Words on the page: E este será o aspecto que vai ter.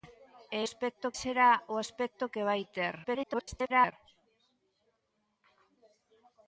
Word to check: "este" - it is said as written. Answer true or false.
false